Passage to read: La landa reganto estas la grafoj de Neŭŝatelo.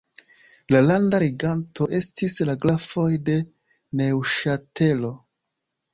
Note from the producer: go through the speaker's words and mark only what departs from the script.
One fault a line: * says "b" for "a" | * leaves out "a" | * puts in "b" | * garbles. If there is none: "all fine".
* says "estis" for "estas"